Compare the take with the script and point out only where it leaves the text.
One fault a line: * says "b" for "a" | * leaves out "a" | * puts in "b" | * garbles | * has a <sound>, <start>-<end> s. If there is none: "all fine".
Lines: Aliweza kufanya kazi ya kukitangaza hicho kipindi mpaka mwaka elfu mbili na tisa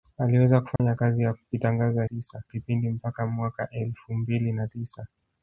* has a dropout, 0.8-0.8 s
* says "tisa" for "hicho"